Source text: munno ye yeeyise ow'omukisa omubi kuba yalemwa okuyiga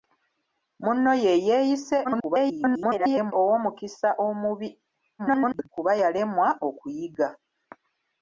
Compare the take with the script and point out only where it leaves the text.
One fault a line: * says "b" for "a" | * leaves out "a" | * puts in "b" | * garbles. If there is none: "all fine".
* garbles
* garbles